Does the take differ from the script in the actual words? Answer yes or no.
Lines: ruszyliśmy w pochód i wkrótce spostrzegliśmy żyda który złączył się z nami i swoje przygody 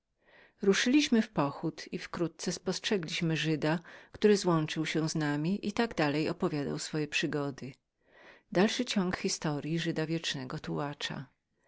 yes